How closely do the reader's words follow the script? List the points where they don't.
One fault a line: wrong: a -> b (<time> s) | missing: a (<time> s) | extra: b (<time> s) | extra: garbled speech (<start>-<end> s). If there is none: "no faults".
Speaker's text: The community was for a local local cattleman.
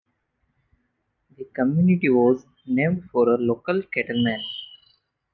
extra: named (2.6 s)
missing: local (3.8 s)